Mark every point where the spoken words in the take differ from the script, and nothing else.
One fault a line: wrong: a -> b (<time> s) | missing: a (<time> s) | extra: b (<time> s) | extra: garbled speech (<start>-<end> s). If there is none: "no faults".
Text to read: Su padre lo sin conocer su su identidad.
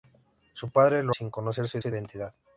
no faults